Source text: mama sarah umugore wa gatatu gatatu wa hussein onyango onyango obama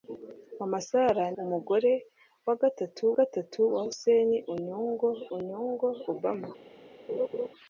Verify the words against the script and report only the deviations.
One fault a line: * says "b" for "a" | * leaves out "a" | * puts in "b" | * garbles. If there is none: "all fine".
all fine